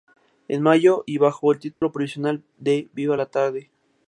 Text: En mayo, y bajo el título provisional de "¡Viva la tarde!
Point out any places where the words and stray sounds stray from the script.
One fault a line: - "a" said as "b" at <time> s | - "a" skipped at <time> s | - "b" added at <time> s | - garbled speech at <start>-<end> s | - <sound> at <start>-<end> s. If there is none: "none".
- dropout at 1.7-1.8 s